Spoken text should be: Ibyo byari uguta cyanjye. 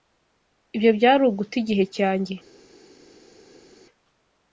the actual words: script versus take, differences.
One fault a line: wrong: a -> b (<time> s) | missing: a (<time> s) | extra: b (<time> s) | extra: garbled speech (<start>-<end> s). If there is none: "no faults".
extra: igihe (1.6 s)